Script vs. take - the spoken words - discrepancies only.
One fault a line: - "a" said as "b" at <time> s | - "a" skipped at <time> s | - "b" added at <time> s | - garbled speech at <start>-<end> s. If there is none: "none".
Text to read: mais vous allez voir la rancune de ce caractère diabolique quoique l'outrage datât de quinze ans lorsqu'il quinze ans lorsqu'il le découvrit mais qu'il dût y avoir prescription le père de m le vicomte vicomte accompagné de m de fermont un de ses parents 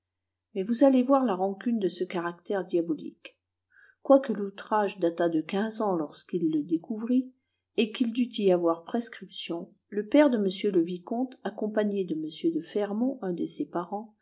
- "quinze ans lorsqu'il" skipped at 6.5 s
- "mais" said as "et" at 7.8 s
- "vicomte" skipped at 11.4 s